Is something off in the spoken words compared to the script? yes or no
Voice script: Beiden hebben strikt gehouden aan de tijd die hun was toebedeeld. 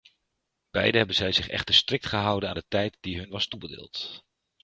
yes